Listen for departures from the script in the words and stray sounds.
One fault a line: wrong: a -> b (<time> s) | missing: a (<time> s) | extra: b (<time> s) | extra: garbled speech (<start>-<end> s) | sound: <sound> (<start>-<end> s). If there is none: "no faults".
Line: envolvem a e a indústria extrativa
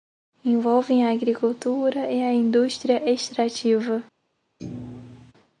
extra: agricultura (1.1 s)
sound: thud (4.6-5.3 s)